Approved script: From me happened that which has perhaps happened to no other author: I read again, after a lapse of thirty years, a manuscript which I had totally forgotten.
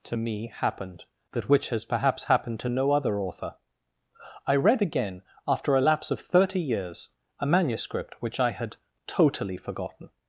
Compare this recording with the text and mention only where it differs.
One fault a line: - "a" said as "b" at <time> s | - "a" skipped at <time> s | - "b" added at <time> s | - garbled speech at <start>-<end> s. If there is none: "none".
- "From" said as "To" at 0.1 s